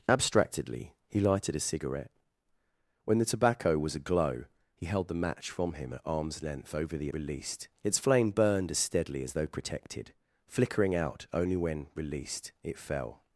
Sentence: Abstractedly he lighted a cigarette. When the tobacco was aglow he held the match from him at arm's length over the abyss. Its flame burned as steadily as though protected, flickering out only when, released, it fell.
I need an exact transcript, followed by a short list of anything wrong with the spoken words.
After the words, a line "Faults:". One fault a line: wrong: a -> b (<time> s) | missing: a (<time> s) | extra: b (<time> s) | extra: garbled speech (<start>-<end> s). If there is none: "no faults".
Abstractedly he lighted a cigarette. When the tobacco was aglow he held the match from him at arm's length over the released. Its flame burned as steadily as though protected, flickering out only when, released, it fell.
Faults:
wrong: abyss -> released (7.1 s)